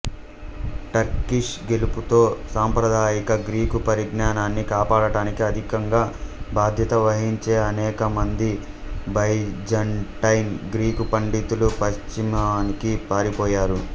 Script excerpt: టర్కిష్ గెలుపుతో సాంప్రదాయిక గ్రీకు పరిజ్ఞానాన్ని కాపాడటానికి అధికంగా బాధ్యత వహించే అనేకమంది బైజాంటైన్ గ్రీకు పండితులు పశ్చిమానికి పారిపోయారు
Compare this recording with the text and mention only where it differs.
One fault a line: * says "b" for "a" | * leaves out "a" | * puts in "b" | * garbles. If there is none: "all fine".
all fine